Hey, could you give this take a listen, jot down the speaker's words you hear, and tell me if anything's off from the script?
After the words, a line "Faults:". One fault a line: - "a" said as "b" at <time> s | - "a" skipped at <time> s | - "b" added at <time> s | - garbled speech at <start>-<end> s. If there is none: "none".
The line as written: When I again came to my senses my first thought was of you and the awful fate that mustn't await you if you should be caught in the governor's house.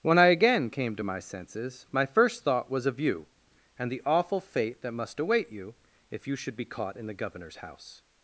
When I again came to my senses my first thought was of you and the awful fate that must await you if you should be caught in the governor's house.
Faults:
- "mustn't" said as "must" at 4.9 s